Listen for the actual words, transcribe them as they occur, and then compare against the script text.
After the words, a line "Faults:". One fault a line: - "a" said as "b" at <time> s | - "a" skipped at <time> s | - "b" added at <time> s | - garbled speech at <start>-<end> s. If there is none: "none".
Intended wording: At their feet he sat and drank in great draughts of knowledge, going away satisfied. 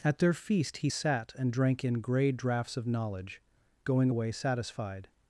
At their feast he sat and drank in grey draughts of knowledge, going away satisfied.
Faults:
- "feet" said as "feast" at 0.3 s
- "great" said as "grey" at 2.0 s